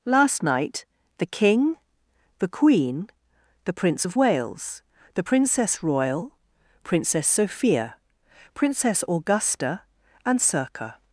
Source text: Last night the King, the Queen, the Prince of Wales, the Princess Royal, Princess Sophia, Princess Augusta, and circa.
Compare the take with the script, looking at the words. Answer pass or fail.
pass